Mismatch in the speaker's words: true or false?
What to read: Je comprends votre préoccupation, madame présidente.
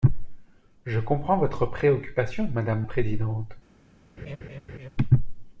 false